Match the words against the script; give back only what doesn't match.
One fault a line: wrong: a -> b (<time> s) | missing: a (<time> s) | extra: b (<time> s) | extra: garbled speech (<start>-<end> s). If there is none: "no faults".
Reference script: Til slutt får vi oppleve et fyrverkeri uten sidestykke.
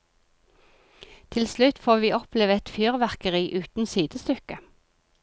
no faults